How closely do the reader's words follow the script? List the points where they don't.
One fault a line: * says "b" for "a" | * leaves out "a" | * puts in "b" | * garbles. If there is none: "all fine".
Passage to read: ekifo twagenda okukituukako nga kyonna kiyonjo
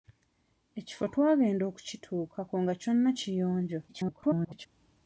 * garbles